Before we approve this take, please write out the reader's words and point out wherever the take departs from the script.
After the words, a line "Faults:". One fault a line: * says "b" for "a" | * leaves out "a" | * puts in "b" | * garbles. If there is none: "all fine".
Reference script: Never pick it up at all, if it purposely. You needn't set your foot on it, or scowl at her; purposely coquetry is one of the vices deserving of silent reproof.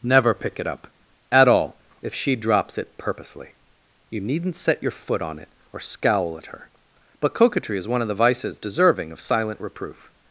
Never pick it up at all, if she drops it purposely. You needn't set your foot on it, or scowl at her; but coquetry is one of the vices deserving of silent reproof.
Faults:
* puts in "she drops"
* says "but" for "purposely"